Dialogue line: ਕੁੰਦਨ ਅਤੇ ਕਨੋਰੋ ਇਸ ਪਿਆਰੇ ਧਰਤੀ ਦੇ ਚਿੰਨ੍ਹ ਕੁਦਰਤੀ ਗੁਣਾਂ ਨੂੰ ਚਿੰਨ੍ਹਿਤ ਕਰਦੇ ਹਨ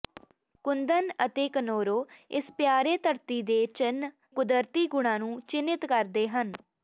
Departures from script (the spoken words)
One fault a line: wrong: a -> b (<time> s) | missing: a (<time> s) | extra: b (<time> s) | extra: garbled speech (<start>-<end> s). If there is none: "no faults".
no faults